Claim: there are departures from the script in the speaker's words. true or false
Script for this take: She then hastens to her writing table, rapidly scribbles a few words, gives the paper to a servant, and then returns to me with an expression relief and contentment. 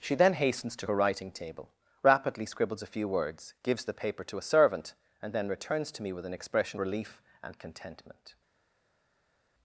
false